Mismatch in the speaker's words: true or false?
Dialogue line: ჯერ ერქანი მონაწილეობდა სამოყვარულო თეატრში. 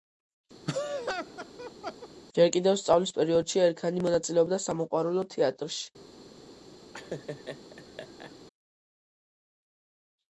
true